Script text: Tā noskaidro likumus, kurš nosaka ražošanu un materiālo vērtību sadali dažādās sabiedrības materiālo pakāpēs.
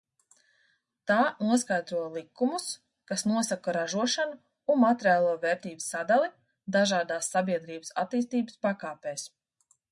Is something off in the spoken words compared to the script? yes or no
yes